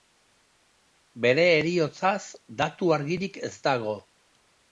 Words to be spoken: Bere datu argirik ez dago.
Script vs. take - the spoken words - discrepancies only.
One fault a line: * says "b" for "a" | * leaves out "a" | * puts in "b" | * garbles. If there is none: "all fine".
* puts in "heriotzaz"